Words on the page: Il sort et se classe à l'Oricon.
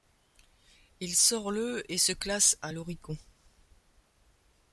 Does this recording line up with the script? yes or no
no